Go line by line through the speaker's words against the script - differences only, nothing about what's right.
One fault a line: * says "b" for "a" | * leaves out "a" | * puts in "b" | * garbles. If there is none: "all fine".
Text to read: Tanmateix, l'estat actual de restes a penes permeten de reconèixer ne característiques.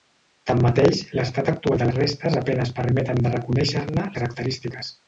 all fine